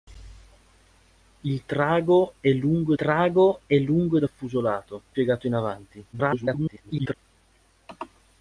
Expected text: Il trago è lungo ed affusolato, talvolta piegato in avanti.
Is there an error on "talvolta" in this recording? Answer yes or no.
yes